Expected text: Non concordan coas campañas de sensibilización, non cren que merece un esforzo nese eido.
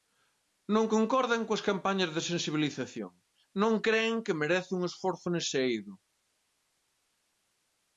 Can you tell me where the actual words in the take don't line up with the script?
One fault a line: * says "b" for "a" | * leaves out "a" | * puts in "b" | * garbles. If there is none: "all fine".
all fine